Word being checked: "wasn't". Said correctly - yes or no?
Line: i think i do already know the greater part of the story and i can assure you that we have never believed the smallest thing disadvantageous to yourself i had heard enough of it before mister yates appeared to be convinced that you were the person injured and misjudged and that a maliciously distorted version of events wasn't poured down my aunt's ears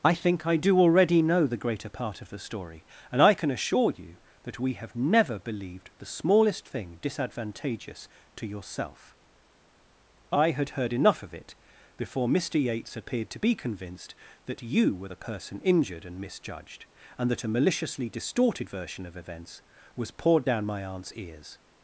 no